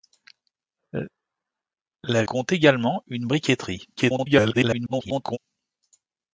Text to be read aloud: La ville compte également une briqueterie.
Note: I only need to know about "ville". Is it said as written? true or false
false